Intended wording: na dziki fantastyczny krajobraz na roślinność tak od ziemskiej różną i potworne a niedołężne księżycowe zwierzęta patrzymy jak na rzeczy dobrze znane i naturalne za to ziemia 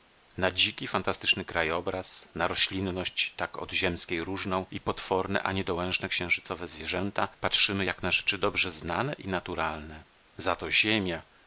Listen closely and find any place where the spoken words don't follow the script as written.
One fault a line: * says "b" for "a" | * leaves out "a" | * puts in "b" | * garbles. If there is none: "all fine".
all fine